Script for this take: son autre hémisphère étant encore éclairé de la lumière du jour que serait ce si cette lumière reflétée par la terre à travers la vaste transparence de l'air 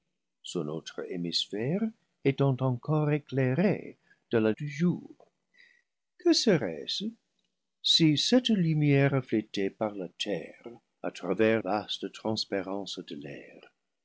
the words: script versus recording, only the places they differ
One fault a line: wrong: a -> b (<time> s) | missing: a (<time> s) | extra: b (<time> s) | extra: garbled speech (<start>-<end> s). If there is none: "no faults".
missing: lumière (4.5 s)
missing: la (11.6 s)